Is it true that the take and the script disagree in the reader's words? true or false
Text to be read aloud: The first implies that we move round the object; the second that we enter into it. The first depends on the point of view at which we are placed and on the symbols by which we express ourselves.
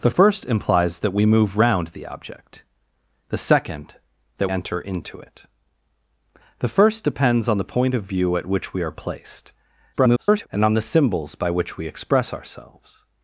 true